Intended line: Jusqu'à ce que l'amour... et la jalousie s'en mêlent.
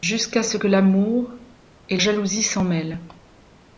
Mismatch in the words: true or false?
true